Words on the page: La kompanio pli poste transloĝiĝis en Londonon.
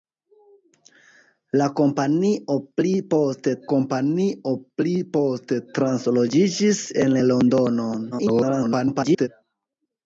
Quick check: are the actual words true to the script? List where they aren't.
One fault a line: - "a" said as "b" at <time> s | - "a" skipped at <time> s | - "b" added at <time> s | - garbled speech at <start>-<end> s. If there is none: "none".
- "kompanio pli poste" added at 3.7 s
- garbled speech at 8.1-9.3 s